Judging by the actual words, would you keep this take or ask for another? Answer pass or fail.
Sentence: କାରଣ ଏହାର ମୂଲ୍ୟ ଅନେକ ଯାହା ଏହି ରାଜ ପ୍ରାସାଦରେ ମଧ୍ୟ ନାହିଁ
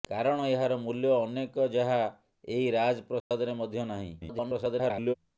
fail